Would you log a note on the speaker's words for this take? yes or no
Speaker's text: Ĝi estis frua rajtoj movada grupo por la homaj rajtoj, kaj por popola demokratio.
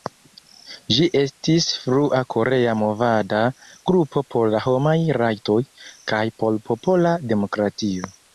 yes